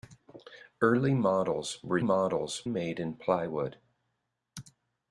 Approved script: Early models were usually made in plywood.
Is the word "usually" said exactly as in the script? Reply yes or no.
no